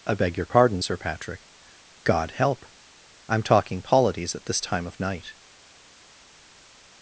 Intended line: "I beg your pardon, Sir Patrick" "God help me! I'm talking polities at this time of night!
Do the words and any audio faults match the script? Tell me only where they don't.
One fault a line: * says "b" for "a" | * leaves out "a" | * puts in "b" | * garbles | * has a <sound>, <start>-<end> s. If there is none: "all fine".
* leaves out "me"